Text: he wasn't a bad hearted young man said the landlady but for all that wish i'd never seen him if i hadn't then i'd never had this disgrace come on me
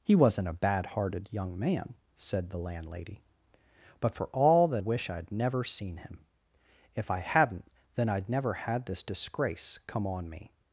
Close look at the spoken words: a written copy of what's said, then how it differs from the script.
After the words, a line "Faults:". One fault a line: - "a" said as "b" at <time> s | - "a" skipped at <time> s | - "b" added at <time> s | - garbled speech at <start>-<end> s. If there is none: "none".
he wasn't a bad hearted young man said the landlady but for all that wish i'd never seen him if i hadn't then i'd never had this disgrace come on me
Faults:
none